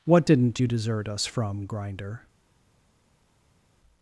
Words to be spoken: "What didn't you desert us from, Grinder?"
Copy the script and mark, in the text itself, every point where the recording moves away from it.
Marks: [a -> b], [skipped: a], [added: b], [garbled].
"What didn't you desert us from, Grinder?"